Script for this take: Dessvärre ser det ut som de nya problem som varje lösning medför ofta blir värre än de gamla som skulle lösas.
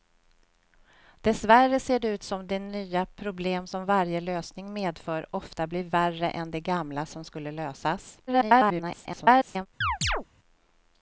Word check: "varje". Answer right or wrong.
right